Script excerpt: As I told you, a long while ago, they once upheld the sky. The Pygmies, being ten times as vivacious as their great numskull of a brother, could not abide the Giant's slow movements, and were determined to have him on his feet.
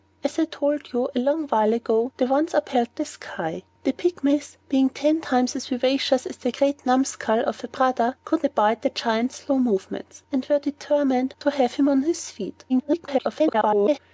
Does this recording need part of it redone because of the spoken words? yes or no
yes